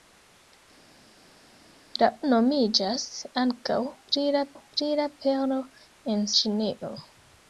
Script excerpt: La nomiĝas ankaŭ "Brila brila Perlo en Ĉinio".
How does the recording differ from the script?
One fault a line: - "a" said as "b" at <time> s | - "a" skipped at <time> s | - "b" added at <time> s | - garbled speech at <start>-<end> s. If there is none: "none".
none